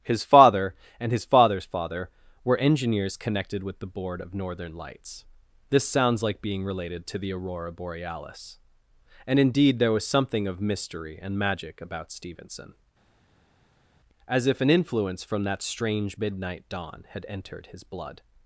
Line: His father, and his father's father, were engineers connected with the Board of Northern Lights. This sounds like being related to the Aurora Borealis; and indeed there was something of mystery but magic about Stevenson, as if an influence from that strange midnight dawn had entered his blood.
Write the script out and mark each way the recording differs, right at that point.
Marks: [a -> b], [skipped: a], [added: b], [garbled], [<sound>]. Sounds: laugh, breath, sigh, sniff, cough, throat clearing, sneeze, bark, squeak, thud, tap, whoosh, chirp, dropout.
His father, and his father's father, were engineers connected with the Board of Northern Lights. This sounds like being related to the Aurora Borealis; and indeed there was something of mystery [but -> and] magic about Stevenson, as if an influence from that strange midnight dawn had entered his blood.